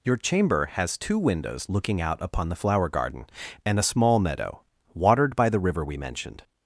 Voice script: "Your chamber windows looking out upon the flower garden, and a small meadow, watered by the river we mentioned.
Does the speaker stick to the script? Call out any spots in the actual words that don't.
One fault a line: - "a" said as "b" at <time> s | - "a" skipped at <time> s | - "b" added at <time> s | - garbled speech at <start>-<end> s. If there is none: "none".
- "has two" added at 0.7 s